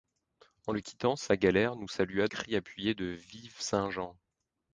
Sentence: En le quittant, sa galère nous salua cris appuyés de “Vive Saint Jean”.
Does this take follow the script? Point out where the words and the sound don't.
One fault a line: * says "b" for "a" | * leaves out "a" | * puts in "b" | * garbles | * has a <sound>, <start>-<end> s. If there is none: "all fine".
all fine